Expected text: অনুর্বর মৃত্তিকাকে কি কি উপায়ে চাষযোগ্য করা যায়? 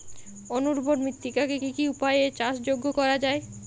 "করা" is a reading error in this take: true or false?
false